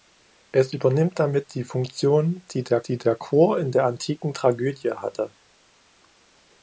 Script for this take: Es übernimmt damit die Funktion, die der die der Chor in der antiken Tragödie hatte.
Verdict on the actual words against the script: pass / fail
pass